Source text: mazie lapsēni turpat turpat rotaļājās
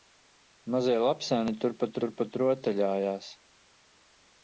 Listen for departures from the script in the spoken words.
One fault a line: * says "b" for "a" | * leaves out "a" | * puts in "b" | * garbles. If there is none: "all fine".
all fine